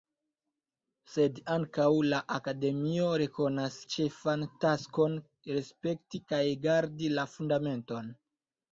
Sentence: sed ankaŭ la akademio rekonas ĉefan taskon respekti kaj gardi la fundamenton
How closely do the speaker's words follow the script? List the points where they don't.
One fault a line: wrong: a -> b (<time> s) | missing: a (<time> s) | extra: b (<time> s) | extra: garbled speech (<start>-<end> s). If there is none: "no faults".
no faults